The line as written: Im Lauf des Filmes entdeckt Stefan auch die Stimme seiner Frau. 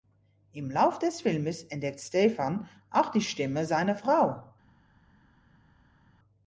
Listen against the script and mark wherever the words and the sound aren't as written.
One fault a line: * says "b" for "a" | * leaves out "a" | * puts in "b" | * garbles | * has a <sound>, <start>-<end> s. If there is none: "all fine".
all fine